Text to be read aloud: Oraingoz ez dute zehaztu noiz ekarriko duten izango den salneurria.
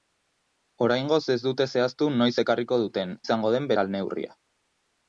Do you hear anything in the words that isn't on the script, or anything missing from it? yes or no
no